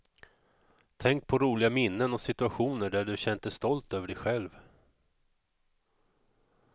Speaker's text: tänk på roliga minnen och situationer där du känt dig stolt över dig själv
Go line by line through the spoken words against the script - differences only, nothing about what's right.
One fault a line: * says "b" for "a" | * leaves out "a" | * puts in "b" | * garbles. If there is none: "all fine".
all fine